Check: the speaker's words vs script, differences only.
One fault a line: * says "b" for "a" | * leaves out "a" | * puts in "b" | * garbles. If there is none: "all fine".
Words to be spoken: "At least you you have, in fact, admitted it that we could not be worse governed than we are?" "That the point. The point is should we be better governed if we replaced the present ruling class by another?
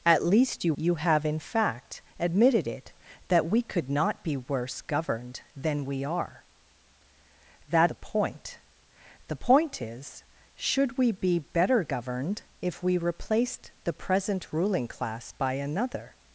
all fine